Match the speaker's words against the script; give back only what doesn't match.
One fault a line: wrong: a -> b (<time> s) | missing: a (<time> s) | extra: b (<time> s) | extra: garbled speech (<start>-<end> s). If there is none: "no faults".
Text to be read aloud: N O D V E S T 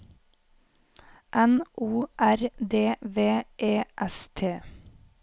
extra: R (2.2 s)